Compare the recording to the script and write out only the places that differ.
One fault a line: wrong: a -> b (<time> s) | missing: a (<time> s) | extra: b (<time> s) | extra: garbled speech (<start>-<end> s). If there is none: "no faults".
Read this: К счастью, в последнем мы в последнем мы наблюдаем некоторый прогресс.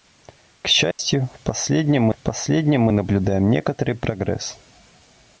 no faults